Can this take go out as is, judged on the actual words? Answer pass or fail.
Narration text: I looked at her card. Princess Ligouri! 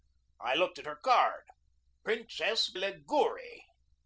pass